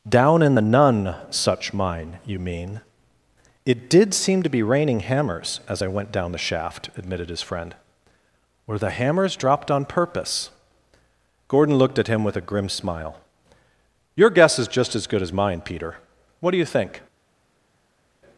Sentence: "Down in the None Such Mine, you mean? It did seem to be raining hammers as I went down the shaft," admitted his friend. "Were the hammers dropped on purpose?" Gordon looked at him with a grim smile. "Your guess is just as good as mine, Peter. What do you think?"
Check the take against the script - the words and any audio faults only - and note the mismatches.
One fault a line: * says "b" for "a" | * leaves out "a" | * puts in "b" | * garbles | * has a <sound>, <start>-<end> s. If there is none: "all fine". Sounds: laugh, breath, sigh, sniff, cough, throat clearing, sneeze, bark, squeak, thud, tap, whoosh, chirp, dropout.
all fine